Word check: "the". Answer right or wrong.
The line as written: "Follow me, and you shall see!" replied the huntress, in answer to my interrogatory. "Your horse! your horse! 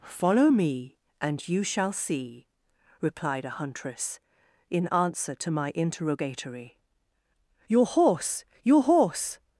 wrong